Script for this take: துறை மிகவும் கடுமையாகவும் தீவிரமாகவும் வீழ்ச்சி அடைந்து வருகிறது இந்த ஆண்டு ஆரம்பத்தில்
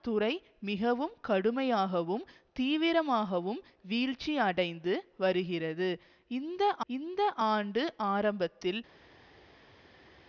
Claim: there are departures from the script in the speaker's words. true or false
true